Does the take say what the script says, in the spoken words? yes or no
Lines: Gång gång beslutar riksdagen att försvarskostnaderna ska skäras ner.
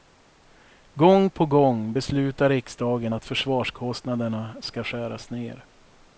no